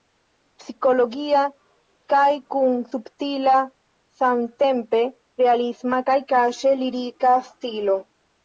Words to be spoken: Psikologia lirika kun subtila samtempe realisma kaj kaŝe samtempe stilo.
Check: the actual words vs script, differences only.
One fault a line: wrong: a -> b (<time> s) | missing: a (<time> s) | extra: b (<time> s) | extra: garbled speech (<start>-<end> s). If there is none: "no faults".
wrong: lirika -> kaj (2.1 s)
wrong: samtempe -> lirika (6.8 s)